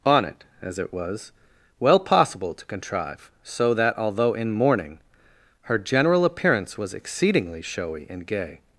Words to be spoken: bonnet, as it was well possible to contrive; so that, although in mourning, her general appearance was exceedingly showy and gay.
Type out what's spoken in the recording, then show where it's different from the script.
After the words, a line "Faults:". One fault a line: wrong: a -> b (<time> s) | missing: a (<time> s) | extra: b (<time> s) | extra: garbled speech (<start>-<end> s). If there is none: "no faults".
on it, as it was well possible to contrive; so that, although in mourning, her general appearance was exceedingly showy and gay.
Faults:
wrong: bonnet -> on it (0.1 s)